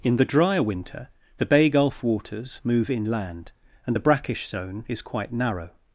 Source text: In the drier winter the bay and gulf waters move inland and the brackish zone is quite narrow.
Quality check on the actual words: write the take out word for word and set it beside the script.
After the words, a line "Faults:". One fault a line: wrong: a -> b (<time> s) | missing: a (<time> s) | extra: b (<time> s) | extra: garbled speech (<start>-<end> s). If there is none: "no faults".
In the drier winter the bay gulf waters move inland and the brackish zone is quite narrow.
Faults:
missing: and (1.7 s)